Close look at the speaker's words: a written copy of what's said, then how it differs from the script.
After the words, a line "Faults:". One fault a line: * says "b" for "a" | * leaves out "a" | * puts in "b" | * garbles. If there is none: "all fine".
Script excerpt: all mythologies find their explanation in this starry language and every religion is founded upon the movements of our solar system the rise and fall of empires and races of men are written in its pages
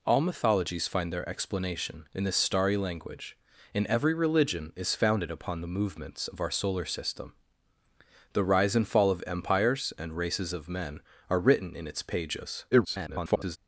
all mythologies find their explanation in this starry language and every religion is founded upon the movements of our solar system the rise and fall of empires and races of men are written in its pages [garbled]
Faults:
* garbles